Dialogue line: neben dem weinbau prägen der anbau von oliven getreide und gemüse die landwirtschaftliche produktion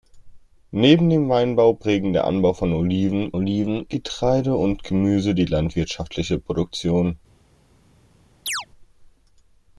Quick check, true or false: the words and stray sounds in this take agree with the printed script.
false